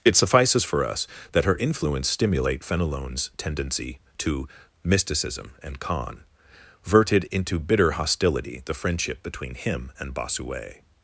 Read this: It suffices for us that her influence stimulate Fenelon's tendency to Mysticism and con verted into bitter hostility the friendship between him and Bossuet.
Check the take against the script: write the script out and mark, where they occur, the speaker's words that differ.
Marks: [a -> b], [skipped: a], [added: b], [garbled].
It suffices for us that her influence stimulate Fenelon's tendency to Mysticism and con verted into bitter hostility the friendship between him and Bossuet.